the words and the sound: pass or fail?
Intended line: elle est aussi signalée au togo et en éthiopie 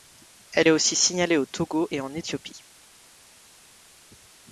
pass